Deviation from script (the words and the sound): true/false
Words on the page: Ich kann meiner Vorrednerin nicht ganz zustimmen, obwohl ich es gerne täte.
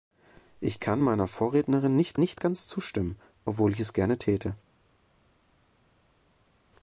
true